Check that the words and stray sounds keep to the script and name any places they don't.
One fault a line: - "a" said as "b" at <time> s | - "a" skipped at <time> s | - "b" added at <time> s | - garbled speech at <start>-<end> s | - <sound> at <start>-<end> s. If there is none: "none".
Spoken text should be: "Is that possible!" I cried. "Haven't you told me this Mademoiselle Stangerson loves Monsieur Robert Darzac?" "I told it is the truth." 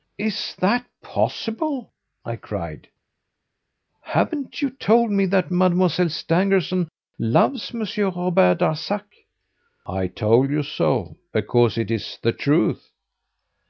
- "this" said as "that" at 5.3 s
- "you so because" added at 10.5 s